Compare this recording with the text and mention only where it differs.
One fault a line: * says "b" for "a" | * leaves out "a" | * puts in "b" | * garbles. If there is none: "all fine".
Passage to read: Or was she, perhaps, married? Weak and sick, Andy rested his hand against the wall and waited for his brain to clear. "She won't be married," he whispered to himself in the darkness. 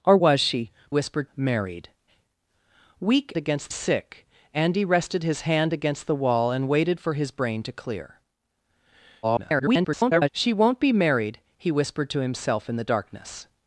* says "whispered" for "perhaps"
* says "against" for "and"
* garbles